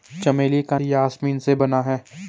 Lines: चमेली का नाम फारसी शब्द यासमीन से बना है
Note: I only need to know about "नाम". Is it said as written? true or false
false